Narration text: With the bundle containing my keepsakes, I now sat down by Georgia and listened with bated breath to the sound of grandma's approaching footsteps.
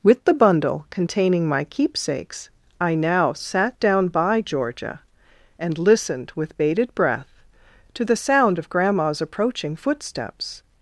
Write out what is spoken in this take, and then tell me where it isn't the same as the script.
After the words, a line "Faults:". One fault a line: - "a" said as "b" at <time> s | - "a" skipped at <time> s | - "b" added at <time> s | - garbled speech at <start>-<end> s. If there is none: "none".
With the bundle containing my keepsakes, I now sat down by Georgia and listened with bated breath to the sound of grandma's approaching footsteps.
Faults:
none